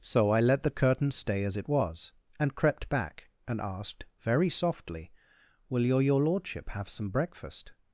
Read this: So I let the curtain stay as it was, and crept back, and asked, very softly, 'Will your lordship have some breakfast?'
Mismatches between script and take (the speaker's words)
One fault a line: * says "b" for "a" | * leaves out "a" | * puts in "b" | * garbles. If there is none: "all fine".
* puts in "your"